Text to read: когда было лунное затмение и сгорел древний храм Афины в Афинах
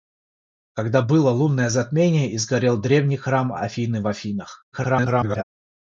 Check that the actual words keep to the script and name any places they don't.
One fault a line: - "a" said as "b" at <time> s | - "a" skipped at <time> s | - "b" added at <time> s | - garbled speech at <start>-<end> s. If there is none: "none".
- garbled speech at 4.7-5.4 s